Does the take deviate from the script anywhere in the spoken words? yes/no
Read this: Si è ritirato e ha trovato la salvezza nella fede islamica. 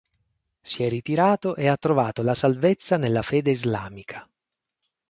no